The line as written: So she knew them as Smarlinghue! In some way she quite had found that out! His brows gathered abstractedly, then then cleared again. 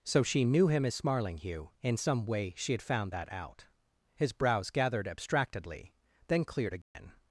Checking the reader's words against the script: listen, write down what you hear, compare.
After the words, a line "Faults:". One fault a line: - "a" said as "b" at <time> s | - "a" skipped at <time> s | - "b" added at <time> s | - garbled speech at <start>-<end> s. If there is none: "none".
So she knew him as Smarlinghue! In some way she had found that out! His brows gathered abstractedly, then cleared again.
Faults:
- "them" said as "him" at 0.7 s
- "quite" skipped at 2.7 s
- "then" skipped at 6.4 s